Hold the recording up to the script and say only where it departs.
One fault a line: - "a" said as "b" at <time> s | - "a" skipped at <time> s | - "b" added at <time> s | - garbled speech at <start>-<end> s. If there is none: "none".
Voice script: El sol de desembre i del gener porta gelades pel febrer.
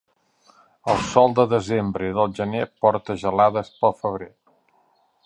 none